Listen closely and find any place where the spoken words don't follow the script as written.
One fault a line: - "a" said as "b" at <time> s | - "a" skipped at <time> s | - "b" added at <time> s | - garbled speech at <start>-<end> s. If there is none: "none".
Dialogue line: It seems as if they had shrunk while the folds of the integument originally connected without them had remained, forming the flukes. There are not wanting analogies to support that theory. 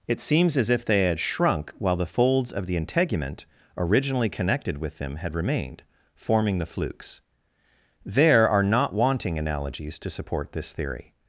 - "without" said as "with" at 4.8 s
- "that" said as "this" at 10.5 s